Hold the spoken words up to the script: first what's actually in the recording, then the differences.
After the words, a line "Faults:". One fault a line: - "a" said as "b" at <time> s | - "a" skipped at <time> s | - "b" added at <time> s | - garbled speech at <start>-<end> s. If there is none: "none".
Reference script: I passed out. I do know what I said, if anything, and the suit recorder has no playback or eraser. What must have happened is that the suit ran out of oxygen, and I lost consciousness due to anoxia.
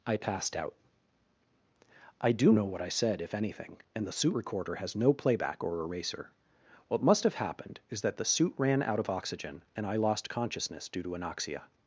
I passed out. I do know what I said, if anything, and the suit recorder has no playback or eraser. What must have happened is that the suit ran out of oxygen, and I lost consciousness due to anoxia.
Faults:
none